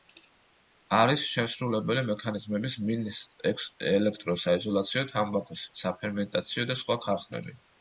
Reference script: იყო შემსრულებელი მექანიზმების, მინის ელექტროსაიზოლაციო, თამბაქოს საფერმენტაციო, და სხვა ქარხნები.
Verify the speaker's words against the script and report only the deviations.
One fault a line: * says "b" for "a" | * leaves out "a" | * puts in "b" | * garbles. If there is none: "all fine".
* says "არის" for "იყო"